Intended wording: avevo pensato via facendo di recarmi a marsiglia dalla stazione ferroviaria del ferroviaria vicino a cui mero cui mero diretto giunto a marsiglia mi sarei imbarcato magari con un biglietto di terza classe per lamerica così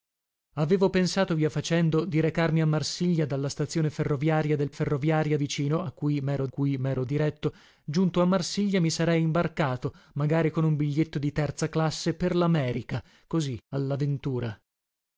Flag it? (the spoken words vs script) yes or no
no